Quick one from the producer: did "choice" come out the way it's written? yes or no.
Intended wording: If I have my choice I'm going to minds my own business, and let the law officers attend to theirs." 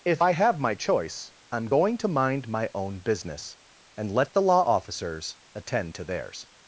yes